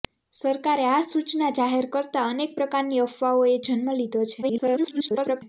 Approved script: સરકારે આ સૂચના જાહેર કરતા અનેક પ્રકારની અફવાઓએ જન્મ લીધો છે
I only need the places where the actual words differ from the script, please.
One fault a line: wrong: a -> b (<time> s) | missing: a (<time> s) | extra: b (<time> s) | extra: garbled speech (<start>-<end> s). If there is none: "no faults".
extra: garbled speech (4.4-5.4 s)